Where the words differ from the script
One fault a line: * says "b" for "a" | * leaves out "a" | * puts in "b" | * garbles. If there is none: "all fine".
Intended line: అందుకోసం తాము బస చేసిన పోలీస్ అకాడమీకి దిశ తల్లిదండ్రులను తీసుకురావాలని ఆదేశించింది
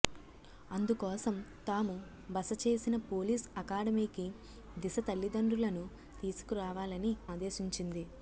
all fine